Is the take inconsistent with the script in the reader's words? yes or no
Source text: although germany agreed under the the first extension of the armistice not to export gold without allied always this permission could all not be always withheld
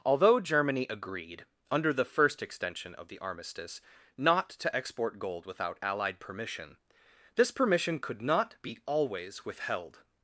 yes